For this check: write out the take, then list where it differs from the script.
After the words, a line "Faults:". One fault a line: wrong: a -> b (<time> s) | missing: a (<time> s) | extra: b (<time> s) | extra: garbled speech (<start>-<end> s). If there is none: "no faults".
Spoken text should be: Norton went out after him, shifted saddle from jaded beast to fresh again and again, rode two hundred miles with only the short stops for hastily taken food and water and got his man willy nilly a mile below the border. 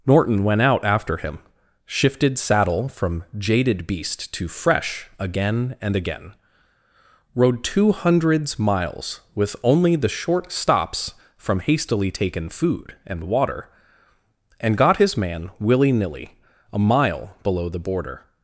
Norton went out after him, shifted saddle from jaded beast to fresh again and again, rode two hundreds miles with only the short stops from hastily taken food and water and got his man willy nilly a mile below the border.
Faults:
wrong: hundred -> hundreds (7.9 s)
wrong: for -> from (11.4 s)